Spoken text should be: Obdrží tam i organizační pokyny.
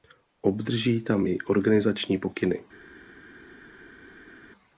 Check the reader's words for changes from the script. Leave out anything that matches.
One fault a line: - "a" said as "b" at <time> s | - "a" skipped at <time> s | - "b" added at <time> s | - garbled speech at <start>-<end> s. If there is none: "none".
none